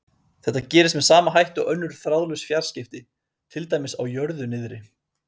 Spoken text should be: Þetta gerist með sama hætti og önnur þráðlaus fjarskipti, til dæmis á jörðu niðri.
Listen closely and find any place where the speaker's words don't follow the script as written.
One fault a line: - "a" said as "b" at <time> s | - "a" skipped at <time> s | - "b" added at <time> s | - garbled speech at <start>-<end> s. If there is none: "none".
none